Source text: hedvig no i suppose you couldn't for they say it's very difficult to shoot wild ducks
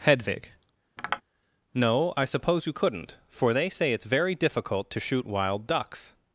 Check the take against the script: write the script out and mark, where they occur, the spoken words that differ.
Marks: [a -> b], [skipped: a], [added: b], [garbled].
hedvig no i suppose you couldn't for they say it's very difficult to shoot wild ducks